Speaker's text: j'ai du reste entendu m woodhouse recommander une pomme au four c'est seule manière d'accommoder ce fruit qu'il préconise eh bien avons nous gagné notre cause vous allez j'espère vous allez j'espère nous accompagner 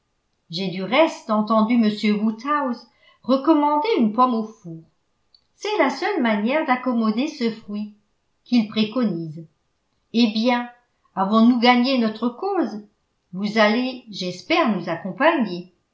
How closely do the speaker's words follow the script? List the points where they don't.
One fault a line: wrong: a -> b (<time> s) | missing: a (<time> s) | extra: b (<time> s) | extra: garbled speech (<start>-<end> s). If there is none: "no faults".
extra: la (5.8 s)
missing: vous allez j'espère (14.7 s)